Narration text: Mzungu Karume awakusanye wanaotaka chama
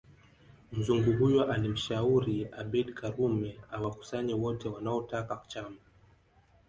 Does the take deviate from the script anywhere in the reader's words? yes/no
yes